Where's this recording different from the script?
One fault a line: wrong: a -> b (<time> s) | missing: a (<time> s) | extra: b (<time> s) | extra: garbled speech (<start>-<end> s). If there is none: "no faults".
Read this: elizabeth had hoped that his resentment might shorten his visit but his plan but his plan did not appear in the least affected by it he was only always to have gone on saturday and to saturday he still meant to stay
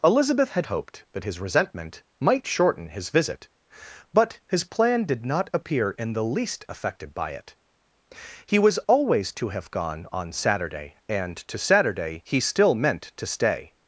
missing: but his plan (5.0 s)
missing: only (8.8 s)